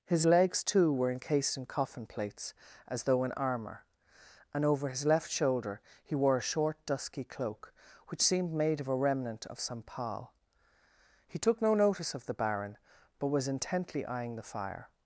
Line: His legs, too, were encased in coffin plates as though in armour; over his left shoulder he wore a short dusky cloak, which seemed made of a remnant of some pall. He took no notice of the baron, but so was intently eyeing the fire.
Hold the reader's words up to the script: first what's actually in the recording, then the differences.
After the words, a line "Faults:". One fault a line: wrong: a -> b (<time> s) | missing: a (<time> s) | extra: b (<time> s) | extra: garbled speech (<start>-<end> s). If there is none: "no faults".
His legs, too, were encased in coffin plates as though in armour; and over his left shoulder he wore a short dusky cloak, which seemed made of a remnant of some pall. He took no notice of the baron, but was intently eyeing the fire.
Faults:
extra: and (4.5 s)
missing: so (13.3 s)